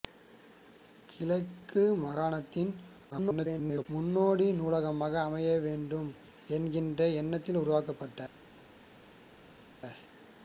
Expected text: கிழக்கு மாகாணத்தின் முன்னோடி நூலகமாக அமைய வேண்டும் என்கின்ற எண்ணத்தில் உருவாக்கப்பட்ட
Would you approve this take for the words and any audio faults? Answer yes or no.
no